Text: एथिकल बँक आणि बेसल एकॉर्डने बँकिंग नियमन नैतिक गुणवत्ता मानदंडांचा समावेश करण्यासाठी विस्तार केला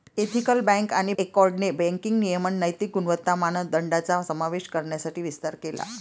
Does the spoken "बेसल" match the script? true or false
false